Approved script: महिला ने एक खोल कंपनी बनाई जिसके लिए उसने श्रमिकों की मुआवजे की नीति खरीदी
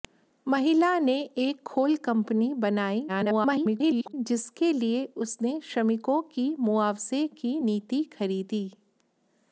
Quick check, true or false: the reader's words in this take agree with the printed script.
false